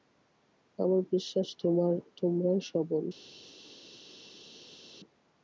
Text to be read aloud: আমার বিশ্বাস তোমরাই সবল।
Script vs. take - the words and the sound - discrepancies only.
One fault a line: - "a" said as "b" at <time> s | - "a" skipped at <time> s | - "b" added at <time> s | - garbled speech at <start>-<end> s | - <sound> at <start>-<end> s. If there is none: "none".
none